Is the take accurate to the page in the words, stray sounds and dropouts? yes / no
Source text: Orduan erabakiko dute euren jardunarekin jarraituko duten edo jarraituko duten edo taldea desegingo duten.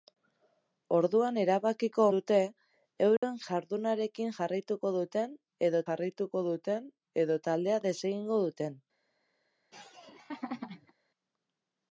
no